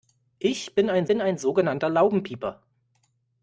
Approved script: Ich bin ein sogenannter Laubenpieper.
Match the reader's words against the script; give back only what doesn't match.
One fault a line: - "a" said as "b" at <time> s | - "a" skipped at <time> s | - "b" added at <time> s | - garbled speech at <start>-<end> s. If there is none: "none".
- "bin ein" added at 1.1 s